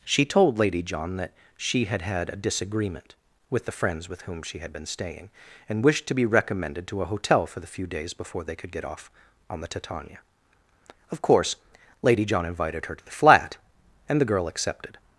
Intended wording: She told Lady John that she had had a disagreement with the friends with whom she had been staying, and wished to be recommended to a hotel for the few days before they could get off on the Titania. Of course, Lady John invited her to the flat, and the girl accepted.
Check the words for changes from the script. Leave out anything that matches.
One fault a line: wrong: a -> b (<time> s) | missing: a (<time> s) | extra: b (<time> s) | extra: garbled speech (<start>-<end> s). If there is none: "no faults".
no faults